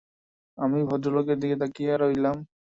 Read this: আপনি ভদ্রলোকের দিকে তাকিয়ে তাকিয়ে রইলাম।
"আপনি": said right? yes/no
no